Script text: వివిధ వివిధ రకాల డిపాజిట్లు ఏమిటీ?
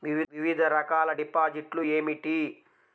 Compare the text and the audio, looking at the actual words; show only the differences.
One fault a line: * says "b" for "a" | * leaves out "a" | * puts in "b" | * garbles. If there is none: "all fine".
* leaves out "వివిధ"